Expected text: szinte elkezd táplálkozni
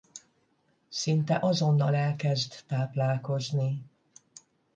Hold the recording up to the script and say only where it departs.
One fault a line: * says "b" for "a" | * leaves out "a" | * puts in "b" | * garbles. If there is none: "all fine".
* puts in "azonnal"